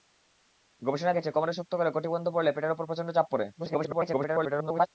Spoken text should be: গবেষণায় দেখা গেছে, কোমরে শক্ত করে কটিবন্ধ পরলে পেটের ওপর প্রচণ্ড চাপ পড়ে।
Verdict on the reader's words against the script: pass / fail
fail